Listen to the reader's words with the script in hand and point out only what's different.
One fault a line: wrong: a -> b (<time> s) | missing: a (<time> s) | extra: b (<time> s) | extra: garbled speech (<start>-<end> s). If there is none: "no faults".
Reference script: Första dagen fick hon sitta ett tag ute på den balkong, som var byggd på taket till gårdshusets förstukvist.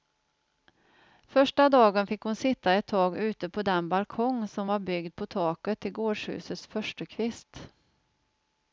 no faults